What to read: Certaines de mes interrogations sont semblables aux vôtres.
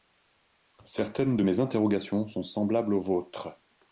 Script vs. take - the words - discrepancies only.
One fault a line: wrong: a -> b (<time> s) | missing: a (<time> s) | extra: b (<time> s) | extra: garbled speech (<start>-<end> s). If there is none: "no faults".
no faults